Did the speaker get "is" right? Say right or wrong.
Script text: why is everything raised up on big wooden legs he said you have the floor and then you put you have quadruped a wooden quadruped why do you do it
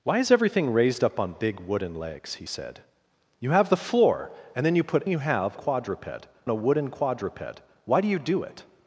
right